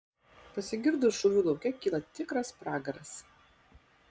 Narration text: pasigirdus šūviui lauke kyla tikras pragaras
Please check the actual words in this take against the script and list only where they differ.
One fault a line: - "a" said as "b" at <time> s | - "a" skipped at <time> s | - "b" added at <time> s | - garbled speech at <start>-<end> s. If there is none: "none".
none